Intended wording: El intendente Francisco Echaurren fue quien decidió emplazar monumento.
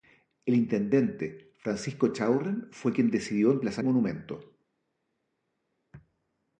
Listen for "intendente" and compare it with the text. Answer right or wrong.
right